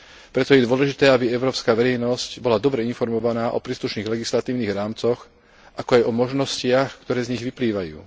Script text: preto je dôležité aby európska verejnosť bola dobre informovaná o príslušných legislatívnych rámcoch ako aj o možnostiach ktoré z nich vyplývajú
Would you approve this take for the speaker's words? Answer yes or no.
yes